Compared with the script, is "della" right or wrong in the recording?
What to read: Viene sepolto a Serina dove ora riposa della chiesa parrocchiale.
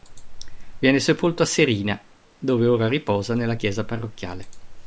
wrong